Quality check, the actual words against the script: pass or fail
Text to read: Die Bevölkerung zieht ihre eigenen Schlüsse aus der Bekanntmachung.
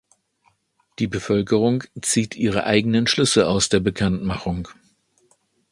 pass